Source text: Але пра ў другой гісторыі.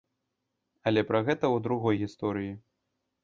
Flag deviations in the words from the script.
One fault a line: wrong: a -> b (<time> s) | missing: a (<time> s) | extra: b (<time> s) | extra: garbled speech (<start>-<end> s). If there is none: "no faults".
extra: гэта (1.3 s)